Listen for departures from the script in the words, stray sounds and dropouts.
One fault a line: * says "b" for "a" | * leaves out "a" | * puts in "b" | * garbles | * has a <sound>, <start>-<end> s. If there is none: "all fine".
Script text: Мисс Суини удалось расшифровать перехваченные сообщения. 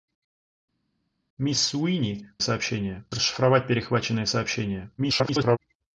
* says "сообщения" for "удалось"
* garbles